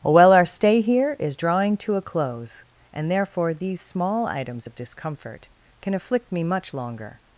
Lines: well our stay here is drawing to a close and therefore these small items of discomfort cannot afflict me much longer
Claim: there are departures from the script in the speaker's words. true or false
true